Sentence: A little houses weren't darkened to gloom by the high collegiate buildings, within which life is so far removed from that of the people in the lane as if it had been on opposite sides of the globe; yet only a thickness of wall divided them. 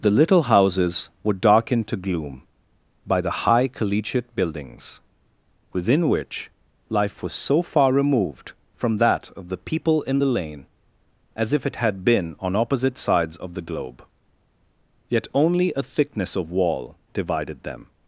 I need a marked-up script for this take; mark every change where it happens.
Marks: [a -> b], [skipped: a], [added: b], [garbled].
[A -> The] little houses [weren't -> were] darkened to gloom by the high collegiate buildings, within which life [is -> was] so far removed from that of the people in the lane as if it had been on opposite sides of the globe; yet only a thickness of wall divided them.